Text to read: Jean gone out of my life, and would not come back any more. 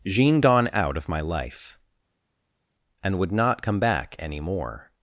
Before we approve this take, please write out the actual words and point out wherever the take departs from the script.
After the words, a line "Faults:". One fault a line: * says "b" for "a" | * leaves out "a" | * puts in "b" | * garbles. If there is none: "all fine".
Jean gone out of my life, and would not come back any more.
Faults:
all fine